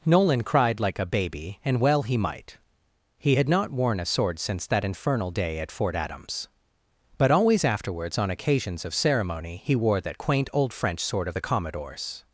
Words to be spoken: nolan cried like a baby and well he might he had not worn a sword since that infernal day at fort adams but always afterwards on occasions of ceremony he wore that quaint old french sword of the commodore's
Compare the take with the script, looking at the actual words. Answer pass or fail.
pass